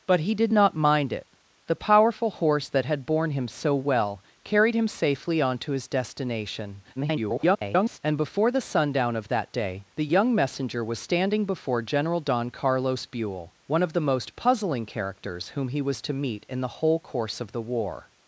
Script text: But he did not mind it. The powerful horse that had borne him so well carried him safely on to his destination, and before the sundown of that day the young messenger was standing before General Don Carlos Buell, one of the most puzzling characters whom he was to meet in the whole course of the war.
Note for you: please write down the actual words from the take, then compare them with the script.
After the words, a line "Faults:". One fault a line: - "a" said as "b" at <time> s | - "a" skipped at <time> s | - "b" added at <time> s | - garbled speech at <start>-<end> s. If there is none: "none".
But he did not mind it. The powerful horse that had borne him so well carried him safely on to his destination, [garbled] and before the sundown of that day the young messenger was standing before General Don Carlos Buell, one of the most puzzling characters whom he was to meet in the whole course of the war.
Faults:
- garbled speech at 7.0-8.0 s